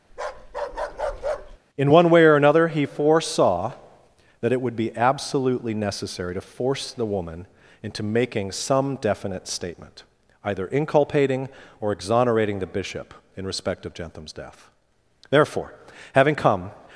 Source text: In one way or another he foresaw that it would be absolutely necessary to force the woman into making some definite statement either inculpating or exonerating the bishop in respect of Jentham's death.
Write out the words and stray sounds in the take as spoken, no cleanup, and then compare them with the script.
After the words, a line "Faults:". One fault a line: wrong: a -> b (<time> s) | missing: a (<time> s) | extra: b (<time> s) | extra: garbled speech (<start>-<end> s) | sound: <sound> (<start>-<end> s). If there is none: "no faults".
In one way or another he foresaw that it would be absolutely necessary to force the woman into making some definite statement either inculpating or exonerating the bishop in respect of Jentham's death. Therefore, having come
Faults:
sound: bark (0.1-1.6 s)
extra: Therefore having come (15.3 s)